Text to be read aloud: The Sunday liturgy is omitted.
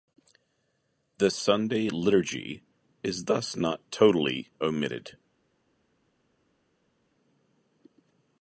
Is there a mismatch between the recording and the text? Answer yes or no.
yes